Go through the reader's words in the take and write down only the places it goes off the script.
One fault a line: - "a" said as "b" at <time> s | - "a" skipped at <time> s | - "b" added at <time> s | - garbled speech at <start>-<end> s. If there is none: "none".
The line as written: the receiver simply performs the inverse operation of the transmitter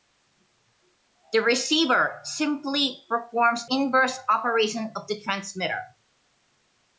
- "the" skipped at 3.7 s